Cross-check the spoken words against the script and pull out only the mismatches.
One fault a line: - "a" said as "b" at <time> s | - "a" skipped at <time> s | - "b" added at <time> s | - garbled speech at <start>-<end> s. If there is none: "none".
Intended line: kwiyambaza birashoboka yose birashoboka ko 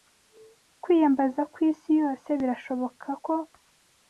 - "birashoboka" said as "kwisi" at 1.5 s